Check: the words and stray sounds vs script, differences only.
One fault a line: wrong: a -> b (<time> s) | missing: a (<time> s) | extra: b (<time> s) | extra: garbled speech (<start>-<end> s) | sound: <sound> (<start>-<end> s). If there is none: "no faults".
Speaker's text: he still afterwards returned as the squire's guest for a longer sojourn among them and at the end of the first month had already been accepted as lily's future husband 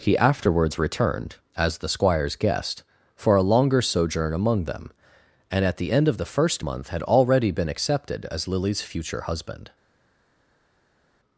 missing: still (0.2 s)